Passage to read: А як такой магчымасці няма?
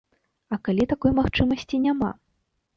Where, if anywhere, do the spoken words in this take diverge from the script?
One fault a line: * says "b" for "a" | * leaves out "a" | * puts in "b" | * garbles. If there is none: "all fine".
* says "калі" for "як"